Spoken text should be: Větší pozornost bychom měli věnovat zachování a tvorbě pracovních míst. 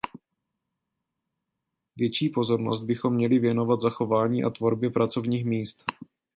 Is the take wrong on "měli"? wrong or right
right